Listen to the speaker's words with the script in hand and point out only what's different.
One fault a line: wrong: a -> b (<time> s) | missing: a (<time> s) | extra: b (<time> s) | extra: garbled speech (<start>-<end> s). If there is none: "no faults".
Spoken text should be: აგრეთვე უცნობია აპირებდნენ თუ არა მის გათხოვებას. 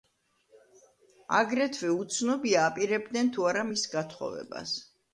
no faults